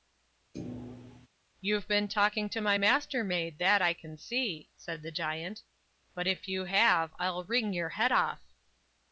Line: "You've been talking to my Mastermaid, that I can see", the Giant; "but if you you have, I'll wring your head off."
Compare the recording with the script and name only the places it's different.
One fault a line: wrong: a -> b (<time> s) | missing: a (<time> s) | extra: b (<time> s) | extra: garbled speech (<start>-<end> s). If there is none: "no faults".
extra: said (4.7 s)
missing: you (6.6 s)